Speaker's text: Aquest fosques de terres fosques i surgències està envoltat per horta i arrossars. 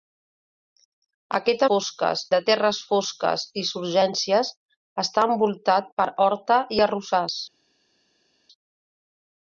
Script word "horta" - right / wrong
right